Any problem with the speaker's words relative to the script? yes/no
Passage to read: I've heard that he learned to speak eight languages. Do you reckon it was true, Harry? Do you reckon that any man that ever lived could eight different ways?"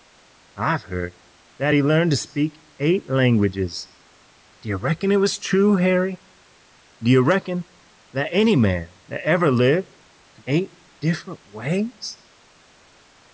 no